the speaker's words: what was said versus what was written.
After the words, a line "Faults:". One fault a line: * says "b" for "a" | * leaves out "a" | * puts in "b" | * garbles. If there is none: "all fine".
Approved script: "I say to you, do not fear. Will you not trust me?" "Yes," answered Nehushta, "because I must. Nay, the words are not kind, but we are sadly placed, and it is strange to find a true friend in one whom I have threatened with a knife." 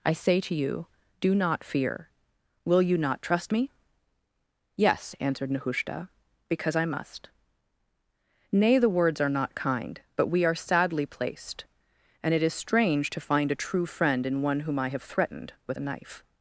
"I say to you, do not fear. Will you not trust me?" "Yes," answered Nehushta, "because I must. Nay, the words are not kind, but we are sadly placed, and it is strange to find a true friend in one whom I have threatened with a knife."
Faults:
all fine